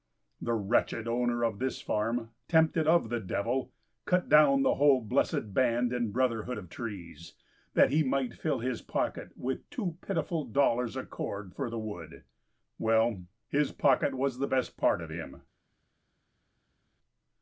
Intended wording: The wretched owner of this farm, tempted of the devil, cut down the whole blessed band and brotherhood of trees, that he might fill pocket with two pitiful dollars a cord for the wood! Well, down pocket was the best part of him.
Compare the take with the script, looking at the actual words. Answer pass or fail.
fail